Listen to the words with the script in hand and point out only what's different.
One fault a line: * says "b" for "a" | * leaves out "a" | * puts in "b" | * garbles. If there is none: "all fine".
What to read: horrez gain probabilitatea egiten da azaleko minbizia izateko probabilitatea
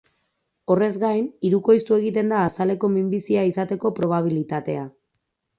* says "hirukoiztu" for "probabilitatea"